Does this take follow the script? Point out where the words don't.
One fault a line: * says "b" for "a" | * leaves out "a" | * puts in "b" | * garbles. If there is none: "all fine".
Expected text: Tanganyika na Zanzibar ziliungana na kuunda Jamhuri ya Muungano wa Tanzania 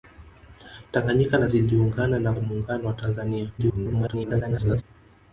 * leaves out "Zanzibar"
* leaves out "kuunda Jamhuri"
* garbles